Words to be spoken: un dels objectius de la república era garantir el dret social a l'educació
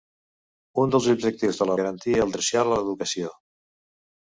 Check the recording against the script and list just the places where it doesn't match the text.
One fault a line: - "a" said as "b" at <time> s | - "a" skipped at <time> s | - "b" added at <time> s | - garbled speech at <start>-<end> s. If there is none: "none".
- "república era" skipped at 1.8 s
- "dret" skipped at 2.3 s